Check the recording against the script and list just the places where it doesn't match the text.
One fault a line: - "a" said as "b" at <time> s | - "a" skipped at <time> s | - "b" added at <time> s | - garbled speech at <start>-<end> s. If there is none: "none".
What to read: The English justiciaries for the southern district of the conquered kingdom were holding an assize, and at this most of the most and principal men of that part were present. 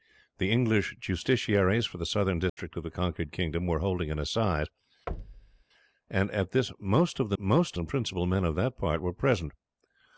none